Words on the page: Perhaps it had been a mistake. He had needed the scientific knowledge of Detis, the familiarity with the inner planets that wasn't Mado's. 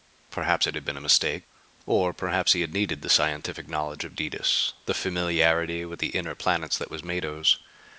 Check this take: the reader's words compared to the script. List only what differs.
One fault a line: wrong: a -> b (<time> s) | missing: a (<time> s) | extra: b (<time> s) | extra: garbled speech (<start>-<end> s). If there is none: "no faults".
extra: Or perhaps (1.9 s)
wrong: wasn't -> was (6.9 s)